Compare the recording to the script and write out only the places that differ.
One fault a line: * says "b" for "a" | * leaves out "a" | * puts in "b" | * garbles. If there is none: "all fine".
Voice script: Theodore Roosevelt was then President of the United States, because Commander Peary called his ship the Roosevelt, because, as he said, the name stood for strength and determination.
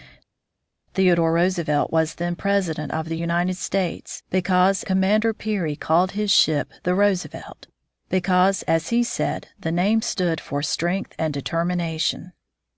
all fine